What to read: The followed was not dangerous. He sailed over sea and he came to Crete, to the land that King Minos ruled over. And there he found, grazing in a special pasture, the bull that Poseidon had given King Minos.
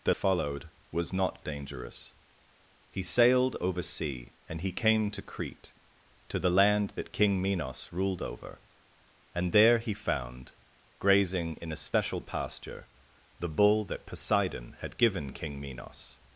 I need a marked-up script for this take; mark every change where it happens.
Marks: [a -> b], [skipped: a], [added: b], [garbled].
The followed was not dangerous. He sailed over sea and he came to Crete, to the land that King Minos ruled over. And there he found, grazing in a special pasture, the bull that Poseidon had given King Minos.